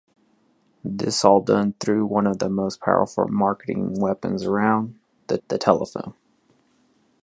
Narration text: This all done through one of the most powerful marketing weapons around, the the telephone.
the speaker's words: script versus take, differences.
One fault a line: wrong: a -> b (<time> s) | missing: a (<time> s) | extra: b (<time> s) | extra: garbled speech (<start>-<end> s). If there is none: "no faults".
no faults